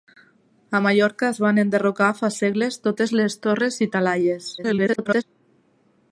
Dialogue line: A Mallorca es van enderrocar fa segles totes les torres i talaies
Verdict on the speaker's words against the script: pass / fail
fail